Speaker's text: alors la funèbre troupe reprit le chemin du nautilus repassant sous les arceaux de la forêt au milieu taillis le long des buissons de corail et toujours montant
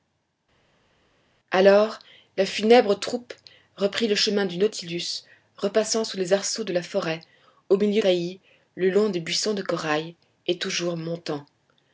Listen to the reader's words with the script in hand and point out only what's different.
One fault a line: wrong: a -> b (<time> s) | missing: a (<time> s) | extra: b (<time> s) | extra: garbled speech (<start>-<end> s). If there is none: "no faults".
no faults